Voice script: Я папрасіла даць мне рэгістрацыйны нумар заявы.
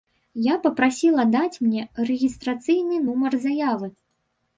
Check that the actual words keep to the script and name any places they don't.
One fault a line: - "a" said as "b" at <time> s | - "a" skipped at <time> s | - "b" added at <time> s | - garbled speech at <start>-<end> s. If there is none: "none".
none